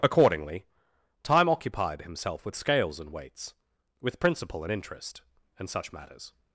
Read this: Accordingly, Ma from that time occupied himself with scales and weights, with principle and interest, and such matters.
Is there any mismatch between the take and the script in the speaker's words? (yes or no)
yes